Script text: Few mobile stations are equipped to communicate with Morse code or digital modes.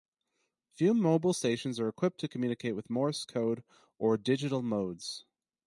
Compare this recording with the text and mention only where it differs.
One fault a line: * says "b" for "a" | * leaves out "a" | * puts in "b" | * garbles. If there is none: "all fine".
all fine